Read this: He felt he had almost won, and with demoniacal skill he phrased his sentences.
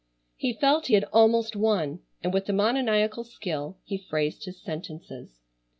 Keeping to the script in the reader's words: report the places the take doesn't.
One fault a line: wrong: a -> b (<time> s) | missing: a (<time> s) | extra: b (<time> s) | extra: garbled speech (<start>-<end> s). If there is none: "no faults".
no faults